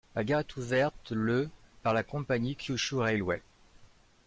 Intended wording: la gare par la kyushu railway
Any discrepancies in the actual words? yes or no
yes